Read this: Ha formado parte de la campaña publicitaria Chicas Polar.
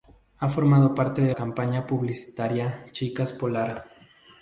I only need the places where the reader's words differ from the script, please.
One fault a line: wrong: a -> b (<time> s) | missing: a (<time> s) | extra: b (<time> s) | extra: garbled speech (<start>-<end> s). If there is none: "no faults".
missing: la (1.4 s)